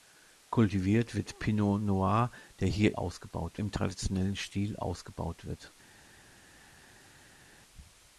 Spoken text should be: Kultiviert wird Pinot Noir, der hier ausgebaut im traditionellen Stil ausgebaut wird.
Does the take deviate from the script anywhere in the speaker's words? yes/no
no